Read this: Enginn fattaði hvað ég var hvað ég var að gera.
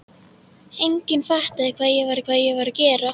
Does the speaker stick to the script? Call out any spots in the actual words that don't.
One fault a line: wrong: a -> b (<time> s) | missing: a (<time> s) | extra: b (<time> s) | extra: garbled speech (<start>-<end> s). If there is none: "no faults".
no faults